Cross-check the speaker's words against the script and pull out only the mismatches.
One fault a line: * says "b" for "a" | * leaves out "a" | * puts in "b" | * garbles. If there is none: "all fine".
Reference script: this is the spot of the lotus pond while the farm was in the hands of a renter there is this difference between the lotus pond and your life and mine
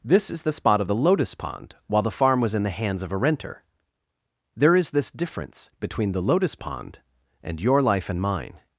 all fine